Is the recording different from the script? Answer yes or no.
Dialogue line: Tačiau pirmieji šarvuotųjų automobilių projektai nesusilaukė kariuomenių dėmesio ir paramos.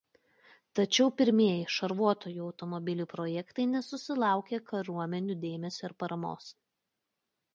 no